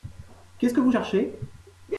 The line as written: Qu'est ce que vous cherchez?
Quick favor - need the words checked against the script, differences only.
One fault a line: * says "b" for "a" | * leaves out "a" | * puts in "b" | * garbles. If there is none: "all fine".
all fine